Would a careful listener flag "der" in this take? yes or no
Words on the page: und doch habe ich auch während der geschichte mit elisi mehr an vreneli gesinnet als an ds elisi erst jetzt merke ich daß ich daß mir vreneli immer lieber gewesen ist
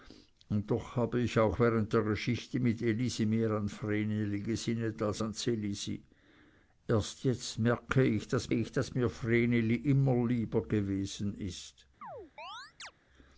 no